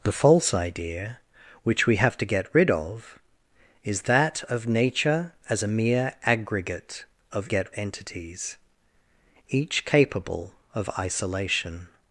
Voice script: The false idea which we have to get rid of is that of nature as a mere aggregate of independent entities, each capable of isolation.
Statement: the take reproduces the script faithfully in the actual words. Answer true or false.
false